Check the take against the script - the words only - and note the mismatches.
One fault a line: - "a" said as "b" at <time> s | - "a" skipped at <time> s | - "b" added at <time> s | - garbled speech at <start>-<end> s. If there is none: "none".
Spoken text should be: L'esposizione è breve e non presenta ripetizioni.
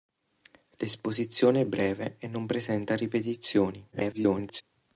- garbled speech at 3.9-4.6 s